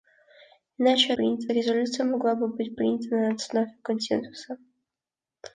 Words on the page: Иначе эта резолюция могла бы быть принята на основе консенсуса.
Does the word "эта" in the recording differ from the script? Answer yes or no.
yes